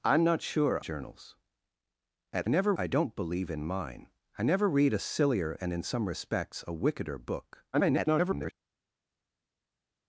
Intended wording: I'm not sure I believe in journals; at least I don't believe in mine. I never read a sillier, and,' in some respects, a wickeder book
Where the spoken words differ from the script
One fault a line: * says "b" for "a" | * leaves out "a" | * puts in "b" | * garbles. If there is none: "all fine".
* leaves out "I believe in"
* says "never" for "least"
* garbles